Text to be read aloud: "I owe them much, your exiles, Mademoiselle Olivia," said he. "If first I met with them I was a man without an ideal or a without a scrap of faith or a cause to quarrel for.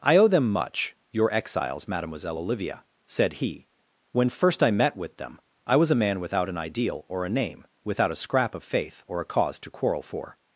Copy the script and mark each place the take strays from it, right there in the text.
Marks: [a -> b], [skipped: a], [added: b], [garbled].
"I owe them much, your exiles, Mademoiselle Olivia," said he. ["If -> When] first I met with them I was a man without an ideal or a [added: name] without a scrap of faith or a cause to quarrel for.